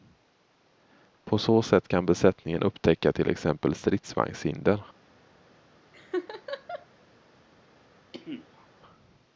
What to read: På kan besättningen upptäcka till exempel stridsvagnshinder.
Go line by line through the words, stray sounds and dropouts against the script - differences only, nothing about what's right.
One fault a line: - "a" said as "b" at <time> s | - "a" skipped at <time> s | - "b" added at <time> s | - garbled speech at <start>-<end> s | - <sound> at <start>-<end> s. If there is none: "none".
- "så sätt" added at 1.4 s
- laugh at 5.9-6.9 s
- cough at 8.1-8.7 s